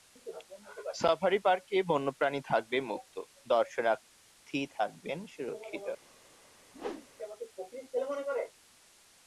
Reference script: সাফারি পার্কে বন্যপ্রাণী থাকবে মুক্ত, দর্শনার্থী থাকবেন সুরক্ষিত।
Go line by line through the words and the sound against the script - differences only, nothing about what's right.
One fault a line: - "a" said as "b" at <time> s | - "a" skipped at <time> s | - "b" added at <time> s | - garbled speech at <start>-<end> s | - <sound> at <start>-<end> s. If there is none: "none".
- whoosh at 6.7-7.1 s